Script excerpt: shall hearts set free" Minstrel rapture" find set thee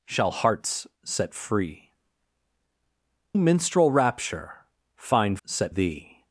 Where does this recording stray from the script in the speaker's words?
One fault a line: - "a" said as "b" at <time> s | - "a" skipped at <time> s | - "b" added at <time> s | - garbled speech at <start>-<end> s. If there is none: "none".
none